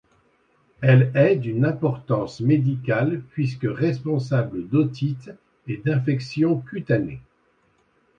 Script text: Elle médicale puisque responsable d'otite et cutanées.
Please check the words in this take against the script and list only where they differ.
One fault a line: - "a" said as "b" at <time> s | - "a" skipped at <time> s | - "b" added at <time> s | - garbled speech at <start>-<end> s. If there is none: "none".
- "est d'une importance" added at 1.1 s
- "d'infections" added at 5.8 s